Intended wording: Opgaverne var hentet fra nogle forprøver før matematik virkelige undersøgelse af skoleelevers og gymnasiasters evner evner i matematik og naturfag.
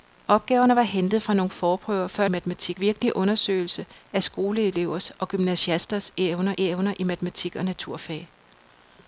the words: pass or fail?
pass